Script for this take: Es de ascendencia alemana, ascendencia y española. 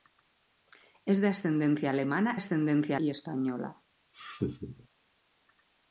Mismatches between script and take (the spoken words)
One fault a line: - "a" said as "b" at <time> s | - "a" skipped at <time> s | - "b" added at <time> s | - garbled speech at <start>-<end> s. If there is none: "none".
none